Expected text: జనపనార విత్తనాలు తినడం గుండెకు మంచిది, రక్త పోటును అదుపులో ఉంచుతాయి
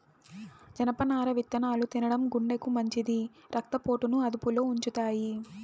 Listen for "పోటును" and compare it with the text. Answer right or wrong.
right